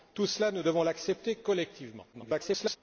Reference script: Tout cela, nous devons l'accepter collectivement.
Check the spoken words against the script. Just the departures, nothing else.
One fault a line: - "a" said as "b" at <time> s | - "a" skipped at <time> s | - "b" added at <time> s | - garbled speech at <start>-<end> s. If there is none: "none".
- garbled speech at 2.1-2.8 s